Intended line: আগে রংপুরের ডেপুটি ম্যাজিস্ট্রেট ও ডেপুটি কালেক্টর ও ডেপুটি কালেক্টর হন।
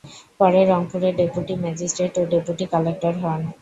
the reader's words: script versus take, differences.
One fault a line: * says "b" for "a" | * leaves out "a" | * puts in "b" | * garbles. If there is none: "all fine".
* says "পরে" for "আগে"
* leaves out "ও ডেপুটি কালেক্টর"